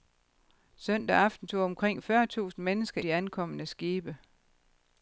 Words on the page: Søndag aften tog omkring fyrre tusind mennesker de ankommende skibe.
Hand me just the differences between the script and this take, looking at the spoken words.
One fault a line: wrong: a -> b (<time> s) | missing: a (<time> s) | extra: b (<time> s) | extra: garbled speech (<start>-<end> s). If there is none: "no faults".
no faults